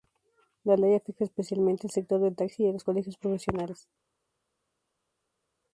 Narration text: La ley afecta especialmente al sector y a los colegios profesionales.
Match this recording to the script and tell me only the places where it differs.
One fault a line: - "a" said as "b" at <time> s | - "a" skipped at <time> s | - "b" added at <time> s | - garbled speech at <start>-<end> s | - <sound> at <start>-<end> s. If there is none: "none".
- "del taxi" added at 2.2 s